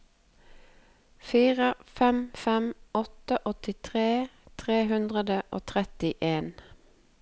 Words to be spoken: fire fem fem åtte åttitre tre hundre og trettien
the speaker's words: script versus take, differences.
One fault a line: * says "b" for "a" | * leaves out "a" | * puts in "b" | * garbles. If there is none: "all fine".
all fine